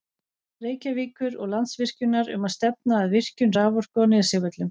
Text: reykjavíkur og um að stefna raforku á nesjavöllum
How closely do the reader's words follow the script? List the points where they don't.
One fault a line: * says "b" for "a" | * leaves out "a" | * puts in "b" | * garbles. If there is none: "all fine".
* puts in "landsvirkjunar"
* puts in "að virkjun"